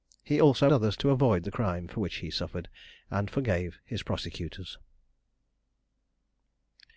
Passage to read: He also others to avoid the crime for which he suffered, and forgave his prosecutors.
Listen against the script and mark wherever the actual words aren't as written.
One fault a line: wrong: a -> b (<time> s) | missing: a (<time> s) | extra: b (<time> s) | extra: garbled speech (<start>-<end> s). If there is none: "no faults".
no faults